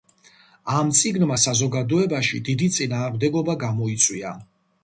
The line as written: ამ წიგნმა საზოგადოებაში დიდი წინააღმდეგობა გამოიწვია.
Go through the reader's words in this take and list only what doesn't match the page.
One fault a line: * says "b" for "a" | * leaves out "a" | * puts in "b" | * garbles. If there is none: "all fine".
all fine